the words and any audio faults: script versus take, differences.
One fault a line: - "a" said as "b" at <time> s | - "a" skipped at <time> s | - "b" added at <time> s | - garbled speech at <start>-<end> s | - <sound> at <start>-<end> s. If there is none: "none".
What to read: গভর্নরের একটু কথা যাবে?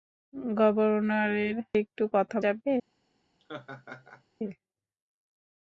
- laugh at 3.4-4.2 s